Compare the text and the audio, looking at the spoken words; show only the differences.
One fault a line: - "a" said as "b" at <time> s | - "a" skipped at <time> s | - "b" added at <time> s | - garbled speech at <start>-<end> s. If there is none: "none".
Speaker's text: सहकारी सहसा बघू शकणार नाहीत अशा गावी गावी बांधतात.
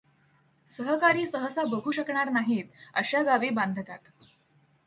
- "गावी" skipped at 3.5 s